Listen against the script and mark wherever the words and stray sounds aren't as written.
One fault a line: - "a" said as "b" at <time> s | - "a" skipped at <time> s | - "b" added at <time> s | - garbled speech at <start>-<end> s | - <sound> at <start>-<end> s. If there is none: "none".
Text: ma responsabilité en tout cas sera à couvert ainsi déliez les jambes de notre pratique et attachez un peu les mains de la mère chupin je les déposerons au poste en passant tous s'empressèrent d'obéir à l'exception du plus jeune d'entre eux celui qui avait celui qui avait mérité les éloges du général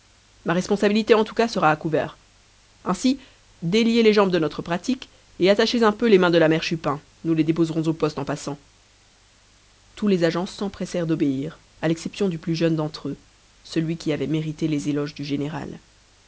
- "je" said as "nous" at 7.2 s
- "les agents" added at 10.1 s
- "celui qui avait" skipped at 14.2 s